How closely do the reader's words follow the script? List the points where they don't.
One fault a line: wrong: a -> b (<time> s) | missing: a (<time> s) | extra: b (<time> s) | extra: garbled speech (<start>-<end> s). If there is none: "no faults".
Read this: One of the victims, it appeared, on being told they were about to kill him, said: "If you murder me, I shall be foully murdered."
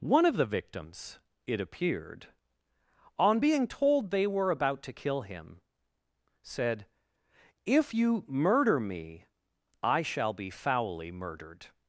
no faults